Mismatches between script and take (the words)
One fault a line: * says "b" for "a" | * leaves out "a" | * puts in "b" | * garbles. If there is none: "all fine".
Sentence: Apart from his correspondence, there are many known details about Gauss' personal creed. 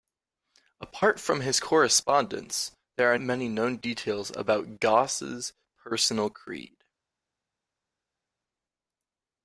all fine